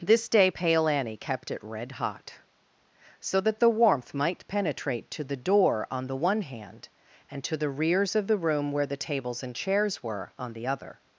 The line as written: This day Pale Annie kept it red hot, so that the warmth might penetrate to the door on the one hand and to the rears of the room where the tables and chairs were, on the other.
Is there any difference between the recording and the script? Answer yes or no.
no